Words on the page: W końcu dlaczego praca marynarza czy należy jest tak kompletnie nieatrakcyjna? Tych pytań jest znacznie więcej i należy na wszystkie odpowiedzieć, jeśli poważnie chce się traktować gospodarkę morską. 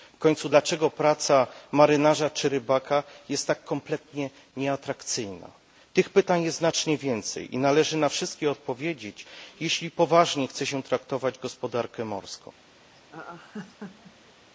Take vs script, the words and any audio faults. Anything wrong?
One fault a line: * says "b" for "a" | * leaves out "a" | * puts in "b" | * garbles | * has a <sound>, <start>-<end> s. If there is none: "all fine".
* says "rybaka" for "należy"
* has a laugh, 12.9-14.3 s